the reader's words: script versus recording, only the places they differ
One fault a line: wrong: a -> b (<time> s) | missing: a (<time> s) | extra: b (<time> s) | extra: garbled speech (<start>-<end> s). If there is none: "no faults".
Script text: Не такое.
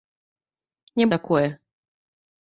no faults